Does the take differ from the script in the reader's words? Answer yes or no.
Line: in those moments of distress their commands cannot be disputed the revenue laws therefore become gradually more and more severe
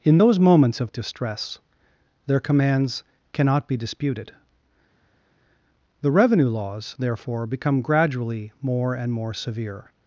no